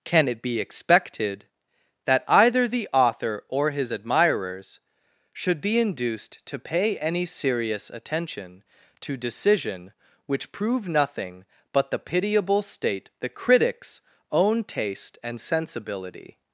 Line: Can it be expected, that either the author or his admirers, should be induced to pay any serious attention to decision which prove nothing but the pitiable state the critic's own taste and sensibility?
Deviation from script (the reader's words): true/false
false